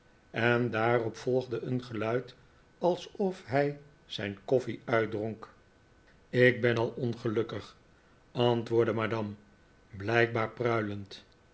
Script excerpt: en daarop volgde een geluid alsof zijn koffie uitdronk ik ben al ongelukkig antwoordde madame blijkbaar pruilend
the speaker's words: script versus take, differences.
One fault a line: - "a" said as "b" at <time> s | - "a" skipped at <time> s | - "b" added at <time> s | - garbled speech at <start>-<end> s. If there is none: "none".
- "hij" added at 3.5 s